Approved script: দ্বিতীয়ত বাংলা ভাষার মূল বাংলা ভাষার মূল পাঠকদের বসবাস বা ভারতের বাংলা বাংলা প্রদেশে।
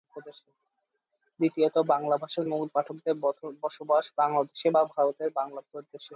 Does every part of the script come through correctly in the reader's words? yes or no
no